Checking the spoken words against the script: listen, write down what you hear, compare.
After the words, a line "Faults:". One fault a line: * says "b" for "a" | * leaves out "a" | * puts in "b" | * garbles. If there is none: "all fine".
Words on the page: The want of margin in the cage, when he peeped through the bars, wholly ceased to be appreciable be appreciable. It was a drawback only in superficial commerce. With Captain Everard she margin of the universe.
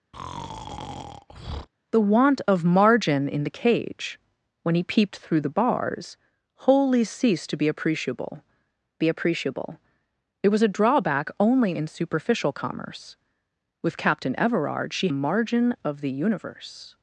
The want of margin in the cage, when he peeped through the bars, wholly ceased to be appreciable be appreciable. It was a drawback only in superficial commerce. With Captain Everard she margin of the universe.
Faults:
all fine